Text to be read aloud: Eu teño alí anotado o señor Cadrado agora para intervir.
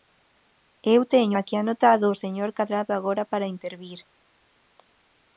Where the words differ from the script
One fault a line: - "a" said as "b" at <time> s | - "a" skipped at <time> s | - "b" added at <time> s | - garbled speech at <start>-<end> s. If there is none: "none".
- "alí" said as "aquí" at 1.4 s